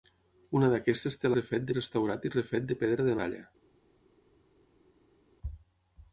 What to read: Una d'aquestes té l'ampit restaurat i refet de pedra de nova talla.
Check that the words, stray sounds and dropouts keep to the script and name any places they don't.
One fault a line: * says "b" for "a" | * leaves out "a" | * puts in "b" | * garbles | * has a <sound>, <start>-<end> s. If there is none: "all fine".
* says "refet" for "l'ampit"
* leaves out "nova"